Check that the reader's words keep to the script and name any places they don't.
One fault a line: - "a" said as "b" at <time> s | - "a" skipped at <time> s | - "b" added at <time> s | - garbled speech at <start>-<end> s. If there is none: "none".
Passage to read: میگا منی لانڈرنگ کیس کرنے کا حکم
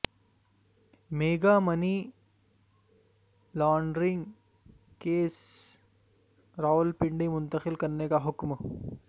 - "راولپنڈی منتقل" added at 6.6 s